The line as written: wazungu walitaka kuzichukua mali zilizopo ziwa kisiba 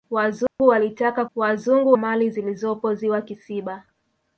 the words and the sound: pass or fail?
fail